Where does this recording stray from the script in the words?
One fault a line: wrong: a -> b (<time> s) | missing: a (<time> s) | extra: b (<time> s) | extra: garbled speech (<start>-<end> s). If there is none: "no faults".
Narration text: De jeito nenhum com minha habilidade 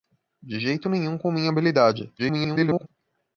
extra: garbled speech (2.2-2.9 s)